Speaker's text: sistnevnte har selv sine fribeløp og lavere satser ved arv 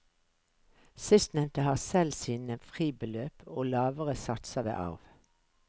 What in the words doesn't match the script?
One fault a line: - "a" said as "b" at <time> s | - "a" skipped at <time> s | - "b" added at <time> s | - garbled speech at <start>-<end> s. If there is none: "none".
none